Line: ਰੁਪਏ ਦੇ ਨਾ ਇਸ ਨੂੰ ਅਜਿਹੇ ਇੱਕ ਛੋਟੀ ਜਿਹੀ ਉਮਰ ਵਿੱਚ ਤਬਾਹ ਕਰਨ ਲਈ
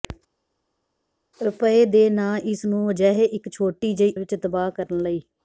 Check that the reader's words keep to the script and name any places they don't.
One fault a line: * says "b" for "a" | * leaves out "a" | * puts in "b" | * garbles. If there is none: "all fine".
* leaves out "ਉਮਰ"